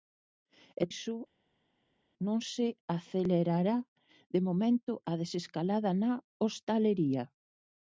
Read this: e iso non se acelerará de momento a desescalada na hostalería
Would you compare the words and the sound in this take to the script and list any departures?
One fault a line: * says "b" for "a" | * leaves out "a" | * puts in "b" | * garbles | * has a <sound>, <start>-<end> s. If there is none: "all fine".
all fine